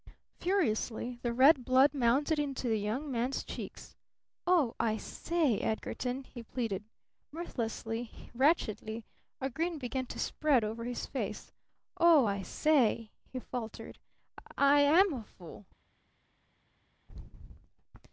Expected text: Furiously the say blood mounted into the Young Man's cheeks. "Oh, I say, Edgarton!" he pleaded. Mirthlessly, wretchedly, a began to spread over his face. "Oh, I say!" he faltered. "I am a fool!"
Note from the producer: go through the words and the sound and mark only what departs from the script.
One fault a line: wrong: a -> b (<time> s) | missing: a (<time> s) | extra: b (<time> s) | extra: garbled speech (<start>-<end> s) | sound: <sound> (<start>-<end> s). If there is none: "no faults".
wrong: say -> red (1.3 s)
extra: grin (9.5 s)